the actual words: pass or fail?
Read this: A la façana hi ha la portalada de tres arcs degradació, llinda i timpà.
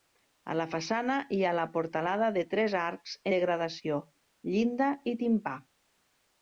pass